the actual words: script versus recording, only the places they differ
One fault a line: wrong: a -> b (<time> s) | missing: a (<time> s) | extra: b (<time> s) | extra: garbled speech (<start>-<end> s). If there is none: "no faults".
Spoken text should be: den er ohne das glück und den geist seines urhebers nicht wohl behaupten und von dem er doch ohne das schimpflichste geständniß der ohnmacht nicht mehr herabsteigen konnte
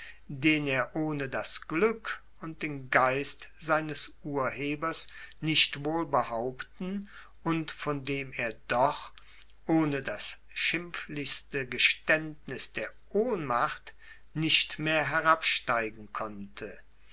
no faults